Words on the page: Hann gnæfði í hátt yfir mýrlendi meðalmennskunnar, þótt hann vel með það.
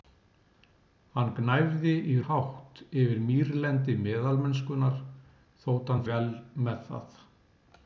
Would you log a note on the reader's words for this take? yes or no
no